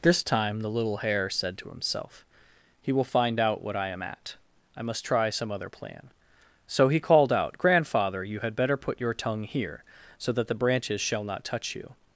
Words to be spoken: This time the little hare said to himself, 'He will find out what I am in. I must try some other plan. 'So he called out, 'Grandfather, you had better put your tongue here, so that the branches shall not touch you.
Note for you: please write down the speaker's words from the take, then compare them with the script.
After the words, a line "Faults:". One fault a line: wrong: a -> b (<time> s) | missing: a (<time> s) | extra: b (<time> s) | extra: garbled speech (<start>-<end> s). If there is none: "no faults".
This time the little hare said to himself, 'He will find out what I am at. I must try some other plan. 'So he called out, 'Grandfather, you had better put your tongue here, so that the branches shall not touch you.
Faults:
wrong: in -> at (4.0 s)